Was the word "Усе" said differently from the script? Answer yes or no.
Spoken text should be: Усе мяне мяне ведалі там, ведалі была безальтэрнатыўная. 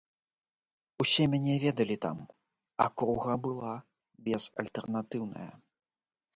no